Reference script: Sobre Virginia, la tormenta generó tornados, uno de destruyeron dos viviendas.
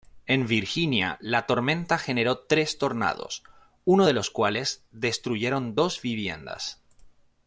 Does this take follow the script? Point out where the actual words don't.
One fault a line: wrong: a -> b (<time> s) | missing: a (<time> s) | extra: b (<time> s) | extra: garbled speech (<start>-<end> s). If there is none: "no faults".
wrong: Sobre -> En (0.2 s)
extra: tres (2.4 s)
extra: los cuales (4.1 s)